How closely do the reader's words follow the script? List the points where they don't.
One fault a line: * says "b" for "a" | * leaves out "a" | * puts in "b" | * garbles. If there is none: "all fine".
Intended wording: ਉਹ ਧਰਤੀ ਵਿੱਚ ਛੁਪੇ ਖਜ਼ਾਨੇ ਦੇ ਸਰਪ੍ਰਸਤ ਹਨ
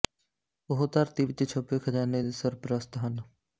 all fine